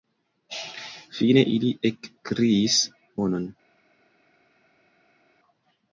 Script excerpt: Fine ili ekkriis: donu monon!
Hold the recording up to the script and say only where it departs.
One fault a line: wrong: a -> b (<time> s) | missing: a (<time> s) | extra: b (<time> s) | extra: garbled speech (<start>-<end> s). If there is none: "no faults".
missing: donu (2.8 s)